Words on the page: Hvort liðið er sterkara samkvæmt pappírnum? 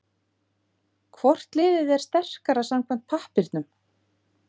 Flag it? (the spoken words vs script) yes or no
no